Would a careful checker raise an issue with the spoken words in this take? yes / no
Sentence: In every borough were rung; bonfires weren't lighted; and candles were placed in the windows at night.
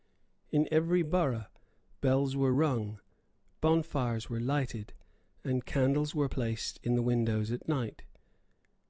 yes